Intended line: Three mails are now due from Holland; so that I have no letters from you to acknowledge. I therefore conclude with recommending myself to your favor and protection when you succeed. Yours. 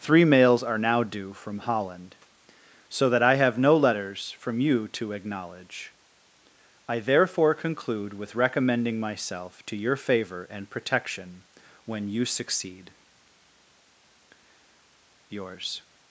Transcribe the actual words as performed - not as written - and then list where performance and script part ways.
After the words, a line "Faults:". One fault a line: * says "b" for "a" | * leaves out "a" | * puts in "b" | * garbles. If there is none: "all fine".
Three mails are now due from Holland; so that I have no letters from you to acknowledge. I therefore conclude with recommending myself to your favor and protection when you succeed. Yours.
Faults:
all fine